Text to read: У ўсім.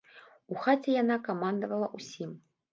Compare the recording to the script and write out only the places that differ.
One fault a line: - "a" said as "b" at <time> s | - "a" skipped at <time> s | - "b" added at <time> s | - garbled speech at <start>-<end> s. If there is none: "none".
- "хаце яна камандавала" added at 0.6 s